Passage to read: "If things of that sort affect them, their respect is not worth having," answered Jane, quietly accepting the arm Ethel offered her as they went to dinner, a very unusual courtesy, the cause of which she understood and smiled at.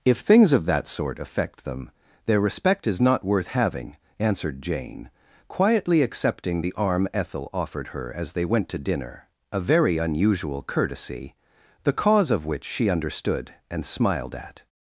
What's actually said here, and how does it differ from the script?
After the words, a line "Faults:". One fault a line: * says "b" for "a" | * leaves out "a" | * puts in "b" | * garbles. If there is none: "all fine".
"If things of that sort affect them, their respect is not worth having," answered Jane, quietly accepting the arm Ethel offered her as they went to dinner, a very unusual courtesy, the cause of which she understood and smiled at.
Faults:
all fine